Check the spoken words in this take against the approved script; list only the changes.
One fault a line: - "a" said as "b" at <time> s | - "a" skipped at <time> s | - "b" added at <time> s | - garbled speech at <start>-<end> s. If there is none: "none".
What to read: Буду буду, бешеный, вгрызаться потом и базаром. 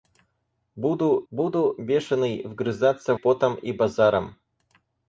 none